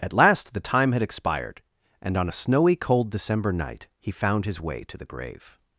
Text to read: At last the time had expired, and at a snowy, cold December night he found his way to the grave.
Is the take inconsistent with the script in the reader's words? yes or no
yes